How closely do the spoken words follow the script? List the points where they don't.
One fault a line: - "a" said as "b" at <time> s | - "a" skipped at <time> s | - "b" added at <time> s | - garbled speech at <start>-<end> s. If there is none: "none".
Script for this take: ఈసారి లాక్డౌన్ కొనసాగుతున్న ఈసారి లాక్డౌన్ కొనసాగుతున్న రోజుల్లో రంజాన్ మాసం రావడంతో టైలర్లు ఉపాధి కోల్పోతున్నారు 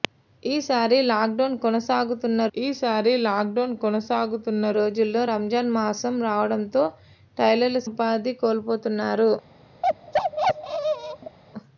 none